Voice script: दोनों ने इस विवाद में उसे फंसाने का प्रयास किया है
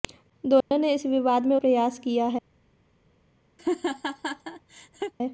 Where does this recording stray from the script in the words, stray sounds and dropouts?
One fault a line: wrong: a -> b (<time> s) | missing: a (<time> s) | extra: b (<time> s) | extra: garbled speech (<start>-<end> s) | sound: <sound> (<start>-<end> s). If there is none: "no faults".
sound: dropout (0.6-0.7 s)
missing: उसे फंसाने का (1.5 s)
sound: laugh (3.6-5.1 s)